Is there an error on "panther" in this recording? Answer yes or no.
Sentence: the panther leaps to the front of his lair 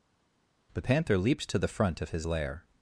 no